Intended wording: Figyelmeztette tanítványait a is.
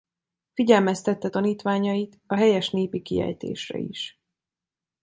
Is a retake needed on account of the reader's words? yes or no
yes